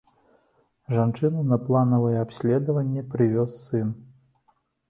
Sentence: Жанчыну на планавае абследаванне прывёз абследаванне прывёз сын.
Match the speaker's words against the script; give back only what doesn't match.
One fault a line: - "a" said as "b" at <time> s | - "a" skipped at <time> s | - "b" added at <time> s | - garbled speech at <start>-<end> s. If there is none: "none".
- "абследаванне прывёз" skipped at 3.5 s